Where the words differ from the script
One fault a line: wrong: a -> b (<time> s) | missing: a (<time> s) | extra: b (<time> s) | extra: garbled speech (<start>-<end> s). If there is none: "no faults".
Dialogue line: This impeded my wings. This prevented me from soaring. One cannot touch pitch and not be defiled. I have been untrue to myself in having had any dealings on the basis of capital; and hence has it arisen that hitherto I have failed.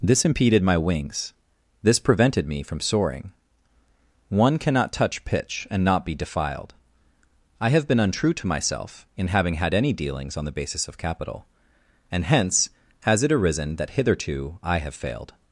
no faults